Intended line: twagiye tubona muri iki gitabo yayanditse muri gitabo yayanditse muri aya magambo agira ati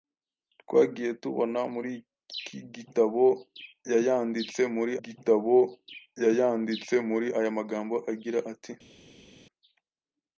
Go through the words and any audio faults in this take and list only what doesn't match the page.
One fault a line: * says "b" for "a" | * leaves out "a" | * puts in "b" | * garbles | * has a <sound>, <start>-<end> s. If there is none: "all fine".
all fine